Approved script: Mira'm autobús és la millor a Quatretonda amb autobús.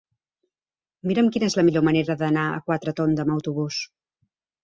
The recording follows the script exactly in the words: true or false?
false